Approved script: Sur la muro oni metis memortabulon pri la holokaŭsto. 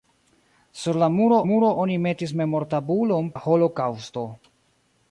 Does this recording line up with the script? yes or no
no